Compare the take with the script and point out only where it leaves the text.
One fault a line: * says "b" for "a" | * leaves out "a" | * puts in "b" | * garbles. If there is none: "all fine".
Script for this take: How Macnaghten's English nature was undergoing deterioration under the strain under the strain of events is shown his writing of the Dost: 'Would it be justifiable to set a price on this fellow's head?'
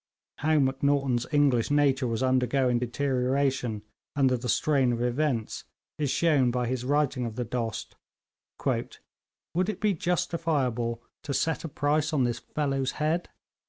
* leaves out "under the strain"
* puts in "by"